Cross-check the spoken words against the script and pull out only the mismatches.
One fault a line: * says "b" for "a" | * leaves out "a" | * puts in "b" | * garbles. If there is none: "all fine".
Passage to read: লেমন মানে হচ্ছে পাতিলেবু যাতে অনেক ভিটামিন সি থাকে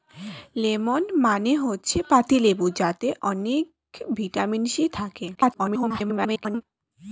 * garbles